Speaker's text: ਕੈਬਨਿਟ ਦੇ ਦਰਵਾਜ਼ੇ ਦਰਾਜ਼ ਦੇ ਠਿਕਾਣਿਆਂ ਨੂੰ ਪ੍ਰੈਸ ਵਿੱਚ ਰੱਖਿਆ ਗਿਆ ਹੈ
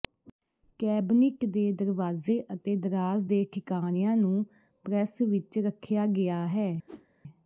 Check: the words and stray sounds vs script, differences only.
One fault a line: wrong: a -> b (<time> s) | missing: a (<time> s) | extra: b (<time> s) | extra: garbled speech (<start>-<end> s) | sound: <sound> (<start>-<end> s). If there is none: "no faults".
extra: ਅਤੇ (2.5 s)
sound: whoosh (6.9-7.1 s)